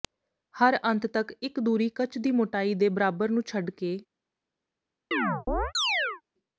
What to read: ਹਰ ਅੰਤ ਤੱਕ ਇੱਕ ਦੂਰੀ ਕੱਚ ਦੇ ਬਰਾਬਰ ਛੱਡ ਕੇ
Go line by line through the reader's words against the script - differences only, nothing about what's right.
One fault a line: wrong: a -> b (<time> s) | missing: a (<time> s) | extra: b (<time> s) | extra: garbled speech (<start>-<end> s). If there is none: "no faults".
extra: ਦੀ ਮੋਟਾਈ (2.2 s)
extra: ਨੂੰ (3.3 s)